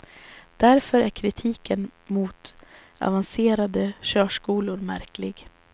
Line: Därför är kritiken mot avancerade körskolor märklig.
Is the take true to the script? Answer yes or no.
yes